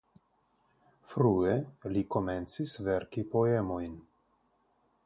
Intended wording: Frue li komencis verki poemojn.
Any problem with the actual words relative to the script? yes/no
no